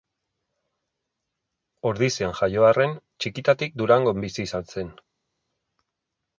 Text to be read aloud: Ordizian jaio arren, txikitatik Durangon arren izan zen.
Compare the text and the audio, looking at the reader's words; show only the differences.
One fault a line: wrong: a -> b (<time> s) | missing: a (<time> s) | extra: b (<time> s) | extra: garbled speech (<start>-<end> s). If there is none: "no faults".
wrong: arren -> bizi (4.3 s)